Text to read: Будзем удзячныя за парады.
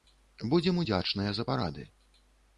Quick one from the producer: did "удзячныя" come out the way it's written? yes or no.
yes